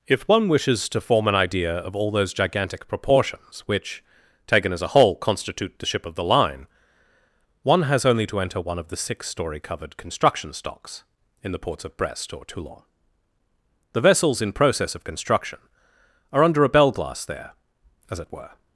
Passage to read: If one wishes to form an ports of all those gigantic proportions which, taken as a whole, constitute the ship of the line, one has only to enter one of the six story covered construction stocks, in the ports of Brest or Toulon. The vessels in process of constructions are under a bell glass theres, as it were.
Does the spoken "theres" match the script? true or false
false